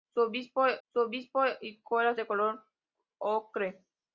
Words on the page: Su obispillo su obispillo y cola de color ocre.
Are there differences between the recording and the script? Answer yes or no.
no